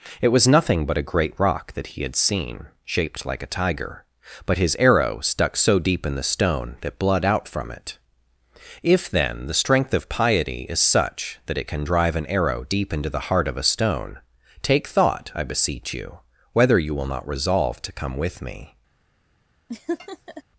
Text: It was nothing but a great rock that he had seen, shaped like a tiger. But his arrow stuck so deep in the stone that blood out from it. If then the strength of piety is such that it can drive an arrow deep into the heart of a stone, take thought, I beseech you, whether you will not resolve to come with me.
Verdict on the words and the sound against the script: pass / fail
fail